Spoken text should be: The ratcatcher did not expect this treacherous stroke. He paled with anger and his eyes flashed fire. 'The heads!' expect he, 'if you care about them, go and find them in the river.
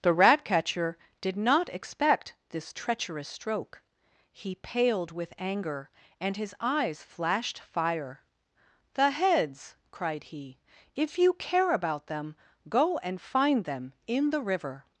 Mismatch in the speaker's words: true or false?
true